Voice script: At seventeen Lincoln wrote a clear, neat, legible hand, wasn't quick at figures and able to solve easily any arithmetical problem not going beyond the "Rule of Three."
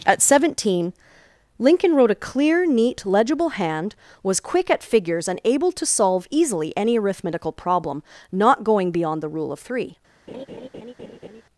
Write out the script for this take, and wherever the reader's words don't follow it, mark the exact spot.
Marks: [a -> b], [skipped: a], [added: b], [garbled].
At seventeen Lincoln wrote a clear, neat, legible hand, [wasn't -> was] quick at figures and able to solve easily any arithmetical problem not going beyond the "Rule of Three."